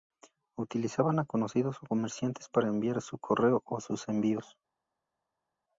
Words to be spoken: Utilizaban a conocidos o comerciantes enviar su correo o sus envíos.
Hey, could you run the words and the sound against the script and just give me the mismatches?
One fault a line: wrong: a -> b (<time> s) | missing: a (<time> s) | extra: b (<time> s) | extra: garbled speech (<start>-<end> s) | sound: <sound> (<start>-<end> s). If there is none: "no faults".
extra: para (2.5 s)